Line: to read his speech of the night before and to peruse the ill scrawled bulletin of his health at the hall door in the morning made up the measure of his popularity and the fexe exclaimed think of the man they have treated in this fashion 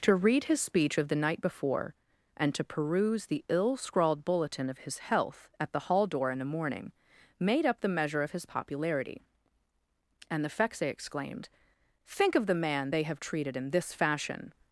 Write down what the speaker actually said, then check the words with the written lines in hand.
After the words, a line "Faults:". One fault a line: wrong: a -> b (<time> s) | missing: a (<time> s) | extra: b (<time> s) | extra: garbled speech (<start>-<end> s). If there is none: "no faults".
to read his speech of the night before and to peruse the ill scrawled bulletin of his health at the hall door in the morning made up the measure of his popularity and the fexe exclaimed think of the man they have treated in this fashion
Faults:
no faults